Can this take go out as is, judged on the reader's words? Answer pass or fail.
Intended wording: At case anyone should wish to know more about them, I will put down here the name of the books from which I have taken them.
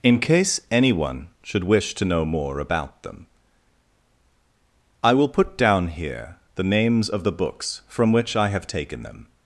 fail